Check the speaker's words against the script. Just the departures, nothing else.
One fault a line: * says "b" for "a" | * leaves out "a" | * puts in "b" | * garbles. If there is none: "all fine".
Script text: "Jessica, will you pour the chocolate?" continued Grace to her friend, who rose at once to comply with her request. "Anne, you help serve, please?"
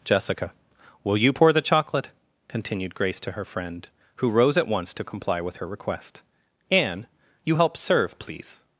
all fine